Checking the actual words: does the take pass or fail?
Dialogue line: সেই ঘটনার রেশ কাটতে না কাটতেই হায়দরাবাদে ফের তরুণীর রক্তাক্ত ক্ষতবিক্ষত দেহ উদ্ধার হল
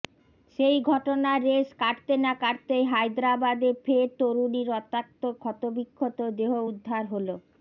pass